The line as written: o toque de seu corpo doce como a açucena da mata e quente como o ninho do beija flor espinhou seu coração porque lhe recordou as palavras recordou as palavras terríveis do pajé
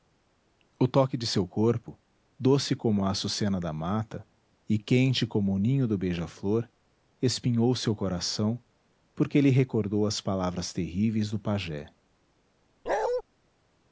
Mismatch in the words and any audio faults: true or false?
true